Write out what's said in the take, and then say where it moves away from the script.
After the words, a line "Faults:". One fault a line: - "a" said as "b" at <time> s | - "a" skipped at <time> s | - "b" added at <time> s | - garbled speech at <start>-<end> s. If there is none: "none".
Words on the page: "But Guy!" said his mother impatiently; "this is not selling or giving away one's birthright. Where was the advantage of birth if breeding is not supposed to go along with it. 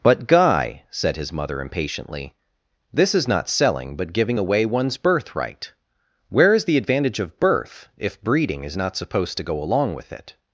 "But Guy!" said his mother impatiently; "this is not selling but giving away one's birthright. Where is the advantage of birth if breeding is not supposed to go along with it.
Faults:
- "or" said as "but" at 4.0 s
- "was" said as "is" at 6.5 s